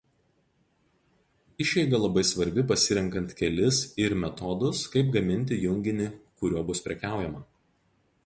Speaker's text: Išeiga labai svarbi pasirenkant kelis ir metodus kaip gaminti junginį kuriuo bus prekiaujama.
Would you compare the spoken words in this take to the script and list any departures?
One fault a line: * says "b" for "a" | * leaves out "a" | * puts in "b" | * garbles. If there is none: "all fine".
all fine